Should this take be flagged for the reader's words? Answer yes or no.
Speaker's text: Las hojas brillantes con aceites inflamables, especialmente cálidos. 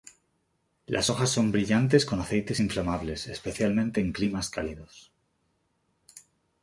yes